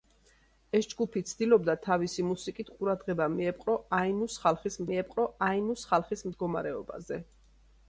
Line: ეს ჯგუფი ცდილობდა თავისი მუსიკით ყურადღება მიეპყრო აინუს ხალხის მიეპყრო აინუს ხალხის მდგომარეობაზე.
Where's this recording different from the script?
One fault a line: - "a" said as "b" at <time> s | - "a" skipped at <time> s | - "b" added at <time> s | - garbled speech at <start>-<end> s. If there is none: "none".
none